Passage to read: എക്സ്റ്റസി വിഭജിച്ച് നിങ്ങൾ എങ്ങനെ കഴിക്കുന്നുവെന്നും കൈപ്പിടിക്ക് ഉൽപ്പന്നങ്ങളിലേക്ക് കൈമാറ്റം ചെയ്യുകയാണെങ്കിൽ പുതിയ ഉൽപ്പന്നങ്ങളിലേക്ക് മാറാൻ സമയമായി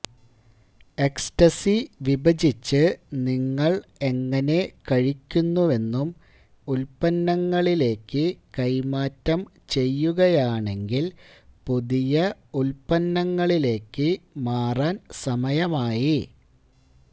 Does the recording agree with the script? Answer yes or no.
no